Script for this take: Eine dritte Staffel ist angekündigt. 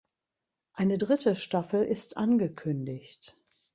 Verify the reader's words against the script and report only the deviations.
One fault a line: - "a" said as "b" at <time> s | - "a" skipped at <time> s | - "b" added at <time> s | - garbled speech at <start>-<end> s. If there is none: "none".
none